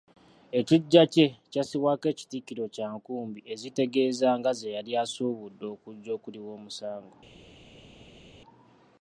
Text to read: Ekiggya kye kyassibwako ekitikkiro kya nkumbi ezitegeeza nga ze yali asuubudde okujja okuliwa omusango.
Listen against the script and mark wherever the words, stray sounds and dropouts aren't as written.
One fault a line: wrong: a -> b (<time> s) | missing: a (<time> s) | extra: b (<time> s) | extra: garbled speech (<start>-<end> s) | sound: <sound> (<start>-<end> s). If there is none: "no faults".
no faults